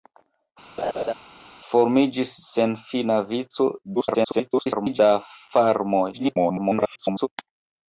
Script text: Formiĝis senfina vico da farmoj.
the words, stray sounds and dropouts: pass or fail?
fail